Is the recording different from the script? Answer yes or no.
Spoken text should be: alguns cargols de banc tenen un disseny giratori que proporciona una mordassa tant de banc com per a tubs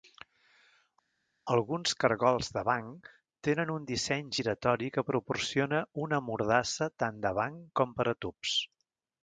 no